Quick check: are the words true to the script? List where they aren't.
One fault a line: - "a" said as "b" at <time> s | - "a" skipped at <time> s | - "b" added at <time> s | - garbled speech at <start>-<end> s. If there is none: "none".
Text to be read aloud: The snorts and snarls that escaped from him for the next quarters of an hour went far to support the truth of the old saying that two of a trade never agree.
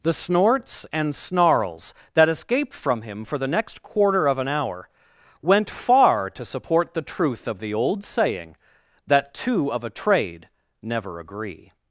- "quarters" said as "quarter" at 3.8 s